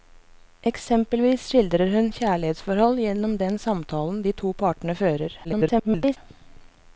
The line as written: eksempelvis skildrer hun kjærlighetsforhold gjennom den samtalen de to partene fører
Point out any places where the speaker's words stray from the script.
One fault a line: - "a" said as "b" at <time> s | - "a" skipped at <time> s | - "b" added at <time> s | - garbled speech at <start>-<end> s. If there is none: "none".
- garbled speech at 5.4-6.2 s